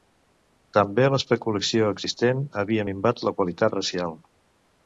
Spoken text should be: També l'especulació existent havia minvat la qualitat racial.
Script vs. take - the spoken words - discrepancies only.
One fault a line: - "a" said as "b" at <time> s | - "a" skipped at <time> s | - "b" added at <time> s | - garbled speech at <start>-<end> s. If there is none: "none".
none